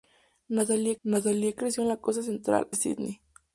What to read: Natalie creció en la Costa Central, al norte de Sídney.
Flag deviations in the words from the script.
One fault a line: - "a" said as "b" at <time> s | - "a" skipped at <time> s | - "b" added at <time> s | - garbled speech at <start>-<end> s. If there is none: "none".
- "natalie" added at 1.0 s
- "al norte de" skipped at 2.7 s